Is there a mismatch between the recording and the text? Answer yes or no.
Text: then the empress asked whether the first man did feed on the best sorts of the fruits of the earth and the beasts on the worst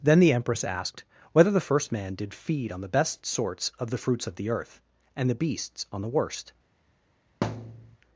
no